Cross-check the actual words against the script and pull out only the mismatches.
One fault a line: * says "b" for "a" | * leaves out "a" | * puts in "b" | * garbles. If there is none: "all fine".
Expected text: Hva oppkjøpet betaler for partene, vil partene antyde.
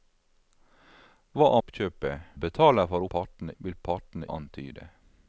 all fine